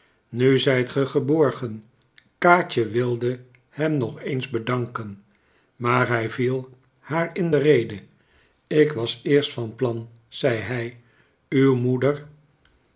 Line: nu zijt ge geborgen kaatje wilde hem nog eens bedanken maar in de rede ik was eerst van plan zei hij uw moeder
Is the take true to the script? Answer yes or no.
no